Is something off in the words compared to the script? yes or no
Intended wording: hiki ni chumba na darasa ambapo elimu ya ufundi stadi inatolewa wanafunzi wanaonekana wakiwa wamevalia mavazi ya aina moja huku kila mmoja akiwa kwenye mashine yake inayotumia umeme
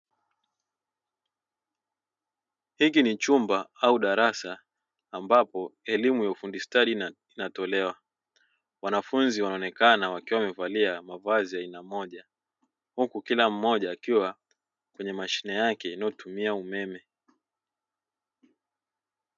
yes